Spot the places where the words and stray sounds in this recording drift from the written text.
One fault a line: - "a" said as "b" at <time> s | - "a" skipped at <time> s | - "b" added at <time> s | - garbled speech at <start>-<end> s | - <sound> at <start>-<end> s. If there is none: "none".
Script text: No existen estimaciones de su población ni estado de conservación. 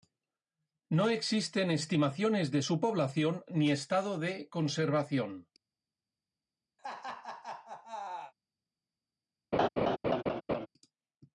- laugh at 6.8-8.3 s
- laugh at 9.5-10.7 s